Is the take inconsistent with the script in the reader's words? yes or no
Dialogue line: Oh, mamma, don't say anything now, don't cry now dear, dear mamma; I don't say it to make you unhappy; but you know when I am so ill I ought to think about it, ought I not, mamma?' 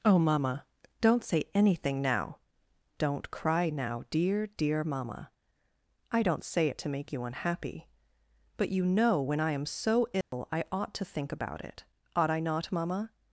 no